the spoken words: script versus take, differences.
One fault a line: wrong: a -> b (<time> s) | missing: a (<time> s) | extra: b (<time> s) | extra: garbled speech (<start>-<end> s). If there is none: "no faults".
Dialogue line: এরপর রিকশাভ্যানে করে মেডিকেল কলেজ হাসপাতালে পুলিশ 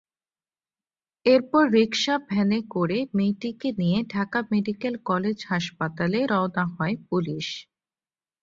extra: মেয়েটিকে নিয়ে ঢাকা (3.2 s)
extra: রওনা হয় (6.3 s)